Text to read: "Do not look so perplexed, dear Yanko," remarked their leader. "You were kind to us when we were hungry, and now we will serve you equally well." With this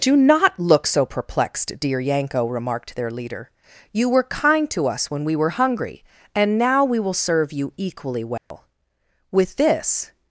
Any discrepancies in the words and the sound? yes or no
yes